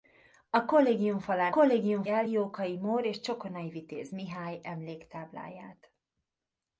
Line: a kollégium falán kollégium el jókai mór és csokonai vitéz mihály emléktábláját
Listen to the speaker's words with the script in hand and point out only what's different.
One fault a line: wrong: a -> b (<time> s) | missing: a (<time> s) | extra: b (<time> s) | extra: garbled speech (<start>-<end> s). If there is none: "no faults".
no faults